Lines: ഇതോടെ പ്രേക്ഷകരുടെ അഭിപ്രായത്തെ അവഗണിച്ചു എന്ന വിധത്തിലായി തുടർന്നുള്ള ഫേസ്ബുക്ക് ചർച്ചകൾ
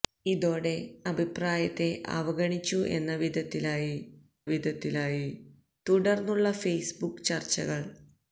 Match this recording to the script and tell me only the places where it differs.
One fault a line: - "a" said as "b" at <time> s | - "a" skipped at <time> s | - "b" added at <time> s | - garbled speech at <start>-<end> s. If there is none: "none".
- "പ്രേക്ഷകരുടെ" skipped at 0.7 s
- "വിധത്തിലായി" added at 4.5 s